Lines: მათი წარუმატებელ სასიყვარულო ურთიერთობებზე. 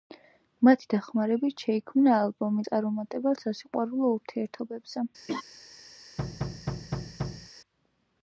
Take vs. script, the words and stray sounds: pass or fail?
fail